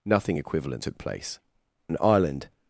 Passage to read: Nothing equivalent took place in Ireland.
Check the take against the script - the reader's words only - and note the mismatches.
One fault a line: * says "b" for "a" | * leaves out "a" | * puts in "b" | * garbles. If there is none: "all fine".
* says "and" for "in"